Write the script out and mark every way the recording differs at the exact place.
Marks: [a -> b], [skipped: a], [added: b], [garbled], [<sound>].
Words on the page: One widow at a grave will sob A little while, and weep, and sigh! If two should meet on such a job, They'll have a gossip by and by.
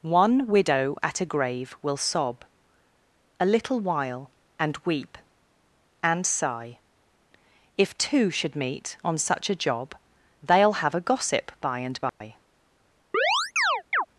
One widow at a grave will sob A little while, and weep, and sigh! If two should meet on such a job, They'll have a gossip by and by. [dropout] [chirp]